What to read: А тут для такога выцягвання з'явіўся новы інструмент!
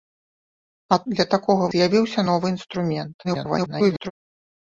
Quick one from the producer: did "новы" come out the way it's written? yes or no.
yes